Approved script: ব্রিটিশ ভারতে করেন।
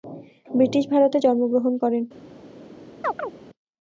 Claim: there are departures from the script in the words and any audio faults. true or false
true